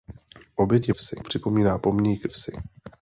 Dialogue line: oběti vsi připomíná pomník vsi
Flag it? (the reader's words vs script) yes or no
no